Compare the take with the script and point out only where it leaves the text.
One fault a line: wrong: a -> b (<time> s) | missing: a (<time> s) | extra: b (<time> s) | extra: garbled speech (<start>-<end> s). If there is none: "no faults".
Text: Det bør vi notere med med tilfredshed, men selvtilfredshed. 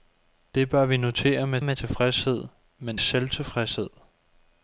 no faults